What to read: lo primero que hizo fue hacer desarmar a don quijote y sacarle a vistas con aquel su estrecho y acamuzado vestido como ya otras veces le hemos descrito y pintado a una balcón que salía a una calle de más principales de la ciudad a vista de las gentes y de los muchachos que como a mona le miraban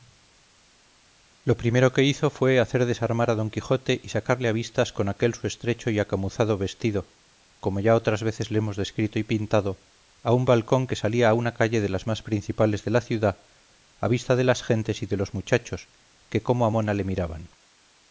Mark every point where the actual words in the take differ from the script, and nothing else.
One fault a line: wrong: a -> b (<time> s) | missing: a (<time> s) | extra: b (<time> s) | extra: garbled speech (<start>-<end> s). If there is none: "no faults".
wrong: una -> un (10.3 s)
extra: las (11.9 s)